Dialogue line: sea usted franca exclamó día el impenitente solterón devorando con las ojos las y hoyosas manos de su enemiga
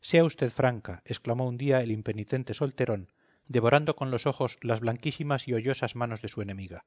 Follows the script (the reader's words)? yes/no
no